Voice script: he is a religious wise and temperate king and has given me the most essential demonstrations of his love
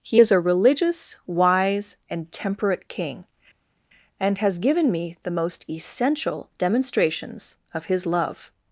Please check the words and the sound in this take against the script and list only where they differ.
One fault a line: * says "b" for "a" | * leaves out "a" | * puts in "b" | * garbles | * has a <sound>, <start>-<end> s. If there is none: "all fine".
all fine